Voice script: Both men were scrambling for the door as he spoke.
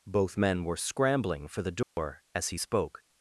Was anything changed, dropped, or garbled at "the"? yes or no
no